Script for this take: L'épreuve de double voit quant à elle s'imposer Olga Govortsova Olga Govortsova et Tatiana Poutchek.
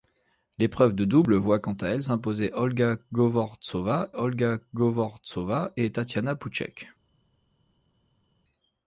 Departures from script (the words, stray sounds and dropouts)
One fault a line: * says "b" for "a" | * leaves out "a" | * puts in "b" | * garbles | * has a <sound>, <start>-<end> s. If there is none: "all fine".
all fine